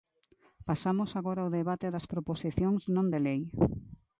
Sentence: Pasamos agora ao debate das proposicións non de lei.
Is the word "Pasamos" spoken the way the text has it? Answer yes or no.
yes